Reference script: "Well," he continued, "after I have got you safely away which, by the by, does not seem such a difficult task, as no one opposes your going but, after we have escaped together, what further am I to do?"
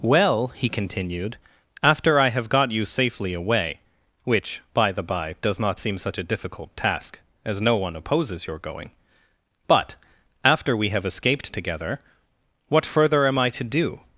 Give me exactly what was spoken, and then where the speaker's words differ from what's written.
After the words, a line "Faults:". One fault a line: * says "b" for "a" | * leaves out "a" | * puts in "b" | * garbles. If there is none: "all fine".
"Well," he continued, "after I have got you safely away which, by the by, does not seem such a difficult task, as no one opposes your going but, after we have escaped together, what further am I to do?"
Faults:
all fine